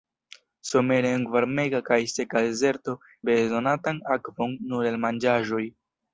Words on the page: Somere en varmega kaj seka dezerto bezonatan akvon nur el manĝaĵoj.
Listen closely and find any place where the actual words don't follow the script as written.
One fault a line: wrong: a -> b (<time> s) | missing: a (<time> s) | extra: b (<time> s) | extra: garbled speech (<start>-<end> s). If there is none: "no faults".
no faults